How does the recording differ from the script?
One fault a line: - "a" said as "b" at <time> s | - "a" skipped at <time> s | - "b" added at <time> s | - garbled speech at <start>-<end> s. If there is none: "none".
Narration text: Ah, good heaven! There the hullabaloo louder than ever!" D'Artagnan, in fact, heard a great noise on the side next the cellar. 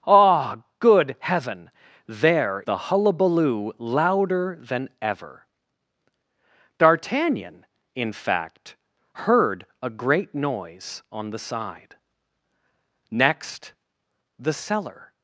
none